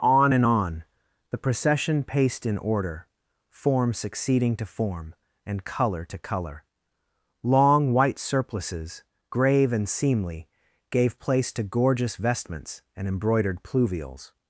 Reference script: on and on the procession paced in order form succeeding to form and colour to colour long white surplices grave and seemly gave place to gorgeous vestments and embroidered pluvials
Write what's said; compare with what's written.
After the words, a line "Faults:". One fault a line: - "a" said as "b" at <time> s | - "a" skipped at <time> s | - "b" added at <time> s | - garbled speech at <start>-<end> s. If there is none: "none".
on and on the procession paced in order form succeeding to form and colour to colour long white surplices grave and seemly gave place to gorgeous vestments and embroidered pluvials
Faults:
none